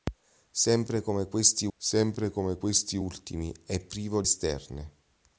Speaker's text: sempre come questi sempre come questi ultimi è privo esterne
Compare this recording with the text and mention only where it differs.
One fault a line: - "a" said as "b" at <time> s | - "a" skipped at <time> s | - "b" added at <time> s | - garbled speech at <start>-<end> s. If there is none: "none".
none